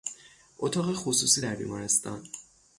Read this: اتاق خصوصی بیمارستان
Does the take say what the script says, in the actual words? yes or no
no